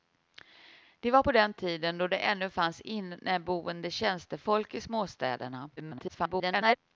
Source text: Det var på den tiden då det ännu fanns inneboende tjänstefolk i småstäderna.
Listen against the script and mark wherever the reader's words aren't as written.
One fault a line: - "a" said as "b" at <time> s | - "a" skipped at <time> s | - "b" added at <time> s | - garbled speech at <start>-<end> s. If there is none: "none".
- garbled speech at 5.8-6.8 s